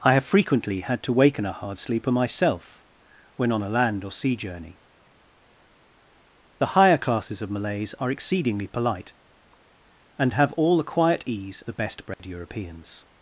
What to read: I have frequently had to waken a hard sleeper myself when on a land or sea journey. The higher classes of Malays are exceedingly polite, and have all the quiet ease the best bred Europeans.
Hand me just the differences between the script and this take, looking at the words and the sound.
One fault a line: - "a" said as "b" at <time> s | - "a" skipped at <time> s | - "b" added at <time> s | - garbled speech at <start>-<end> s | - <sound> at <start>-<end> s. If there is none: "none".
- dropout at 12.1-12.2 s